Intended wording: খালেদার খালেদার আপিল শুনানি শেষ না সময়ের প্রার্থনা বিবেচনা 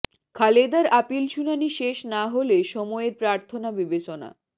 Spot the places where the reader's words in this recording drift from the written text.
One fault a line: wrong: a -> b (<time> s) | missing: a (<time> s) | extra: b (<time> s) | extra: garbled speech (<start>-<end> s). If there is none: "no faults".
missing: খালেদার (0.8 s)
extra: হলে (2.3 s)